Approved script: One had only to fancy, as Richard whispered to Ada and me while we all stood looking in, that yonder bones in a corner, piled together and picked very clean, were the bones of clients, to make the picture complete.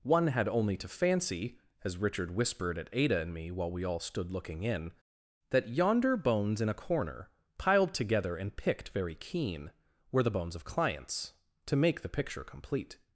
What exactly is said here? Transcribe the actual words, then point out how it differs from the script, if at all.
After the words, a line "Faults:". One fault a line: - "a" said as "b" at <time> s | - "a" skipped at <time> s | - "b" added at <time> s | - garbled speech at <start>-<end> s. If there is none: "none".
One had only to fancy, as Richard whispered at Ada and me while we all stood looking in, that yonder bones in a corner, piled together and picked very keen, were the bones of clients, to make the picture complete.
Faults:
- "to" said as "at" at 2.8 s
- "clean" said as "keen" at 9.2 s